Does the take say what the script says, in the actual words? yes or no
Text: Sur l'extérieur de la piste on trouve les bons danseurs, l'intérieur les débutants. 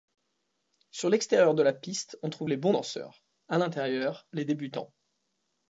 no